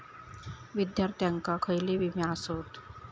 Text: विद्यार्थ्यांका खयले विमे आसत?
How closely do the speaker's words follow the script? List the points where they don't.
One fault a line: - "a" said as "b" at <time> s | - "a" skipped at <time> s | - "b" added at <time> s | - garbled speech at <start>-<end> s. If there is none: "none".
none